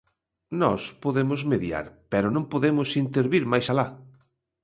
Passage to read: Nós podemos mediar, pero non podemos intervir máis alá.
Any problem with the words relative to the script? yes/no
no